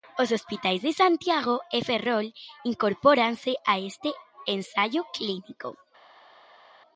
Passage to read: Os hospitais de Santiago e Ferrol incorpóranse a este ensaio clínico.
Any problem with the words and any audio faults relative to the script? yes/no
no